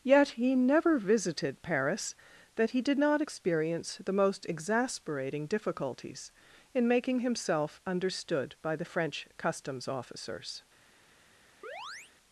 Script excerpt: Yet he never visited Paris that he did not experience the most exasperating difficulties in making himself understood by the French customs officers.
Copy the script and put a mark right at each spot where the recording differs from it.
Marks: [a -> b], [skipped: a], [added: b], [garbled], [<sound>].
Yet he never visited Paris that he did not experience the most exasperating difficulties in making himself understood by the French customs officers. [chirp]